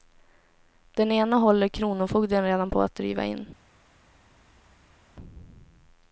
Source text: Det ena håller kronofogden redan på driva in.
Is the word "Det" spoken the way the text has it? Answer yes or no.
no